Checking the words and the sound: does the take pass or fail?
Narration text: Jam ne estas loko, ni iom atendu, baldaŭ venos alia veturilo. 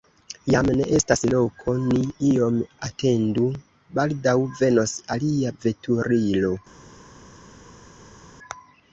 pass